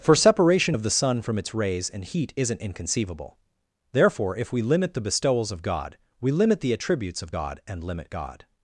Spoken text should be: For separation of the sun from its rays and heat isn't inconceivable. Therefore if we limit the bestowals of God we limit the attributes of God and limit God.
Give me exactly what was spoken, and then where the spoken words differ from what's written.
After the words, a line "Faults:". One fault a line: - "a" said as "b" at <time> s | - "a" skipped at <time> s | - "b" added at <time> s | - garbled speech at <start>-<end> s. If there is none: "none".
For separation of the sun from its rays and heat isn't inconceivable. Therefore if we limit the bestowals of God we limit the attributes of God and limit God.
Faults:
none